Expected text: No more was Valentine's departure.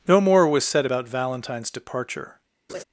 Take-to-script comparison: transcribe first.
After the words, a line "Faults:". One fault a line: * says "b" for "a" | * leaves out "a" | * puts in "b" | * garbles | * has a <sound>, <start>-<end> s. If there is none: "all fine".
No more was said about Valentine's departure.
Faults:
* puts in "said about"
* has a laugh, 2.7-2.8 s